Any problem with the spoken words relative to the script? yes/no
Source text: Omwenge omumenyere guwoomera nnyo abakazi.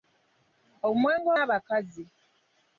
yes